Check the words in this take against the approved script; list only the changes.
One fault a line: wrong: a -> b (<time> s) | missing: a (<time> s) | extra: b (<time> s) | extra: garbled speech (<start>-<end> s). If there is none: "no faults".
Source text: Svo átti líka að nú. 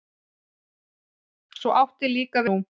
no faults